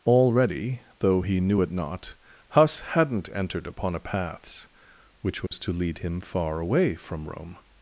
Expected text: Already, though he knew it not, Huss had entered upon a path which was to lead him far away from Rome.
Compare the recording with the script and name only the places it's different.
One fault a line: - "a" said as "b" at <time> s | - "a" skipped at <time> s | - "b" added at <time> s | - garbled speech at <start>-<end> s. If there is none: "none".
- "had" said as "hadn't" at 2.8 s
- "path" said as "paths" at 4.0 s